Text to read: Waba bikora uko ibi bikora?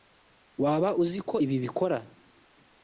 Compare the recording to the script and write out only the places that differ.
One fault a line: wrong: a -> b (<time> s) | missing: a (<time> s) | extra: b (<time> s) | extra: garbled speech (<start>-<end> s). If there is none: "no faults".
wrong: bikora -> uzi (1.0 s)